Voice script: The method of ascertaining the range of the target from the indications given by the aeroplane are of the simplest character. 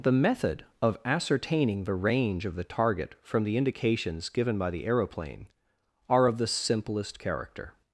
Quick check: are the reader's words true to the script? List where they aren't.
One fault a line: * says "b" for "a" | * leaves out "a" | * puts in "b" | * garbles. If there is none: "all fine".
all fine